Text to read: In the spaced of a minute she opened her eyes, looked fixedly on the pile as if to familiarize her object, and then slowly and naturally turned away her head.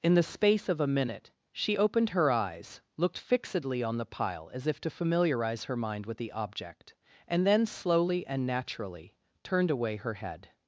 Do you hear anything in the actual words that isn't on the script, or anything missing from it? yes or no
yes